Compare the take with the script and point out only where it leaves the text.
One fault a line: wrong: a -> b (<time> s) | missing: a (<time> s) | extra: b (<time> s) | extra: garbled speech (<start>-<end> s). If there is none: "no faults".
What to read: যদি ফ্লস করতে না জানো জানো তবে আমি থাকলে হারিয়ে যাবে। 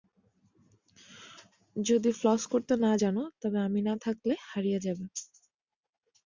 missing: জানো (3.2 s)
extra: না (3.8 s)